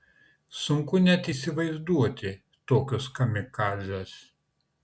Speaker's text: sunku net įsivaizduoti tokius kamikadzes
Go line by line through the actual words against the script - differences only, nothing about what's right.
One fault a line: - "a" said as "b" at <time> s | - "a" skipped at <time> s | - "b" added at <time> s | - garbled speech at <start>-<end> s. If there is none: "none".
none